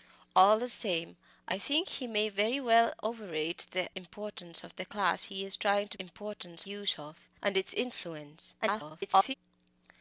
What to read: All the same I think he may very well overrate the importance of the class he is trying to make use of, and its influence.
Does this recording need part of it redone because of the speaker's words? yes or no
yes